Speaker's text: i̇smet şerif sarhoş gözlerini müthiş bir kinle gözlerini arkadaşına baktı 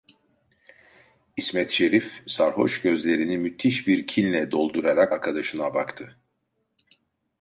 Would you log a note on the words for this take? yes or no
yes